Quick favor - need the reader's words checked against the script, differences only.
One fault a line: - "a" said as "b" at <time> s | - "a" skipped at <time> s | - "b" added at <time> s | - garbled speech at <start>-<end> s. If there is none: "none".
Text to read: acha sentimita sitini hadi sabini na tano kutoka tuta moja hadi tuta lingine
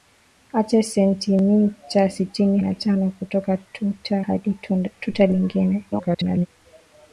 - "hadi sabini" skipped at 2.6 s
- "moja" skipped at 4.2 s
- garbled speech at 5.9-6.5 s